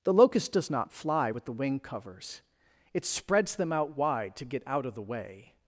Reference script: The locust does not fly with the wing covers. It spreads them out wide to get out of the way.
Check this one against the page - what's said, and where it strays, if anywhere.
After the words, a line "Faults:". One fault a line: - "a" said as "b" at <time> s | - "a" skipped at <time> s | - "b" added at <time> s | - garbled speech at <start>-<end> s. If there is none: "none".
The locust does not fly with the wing covers. It spreads them out wide to get out of the way.
Faults:
none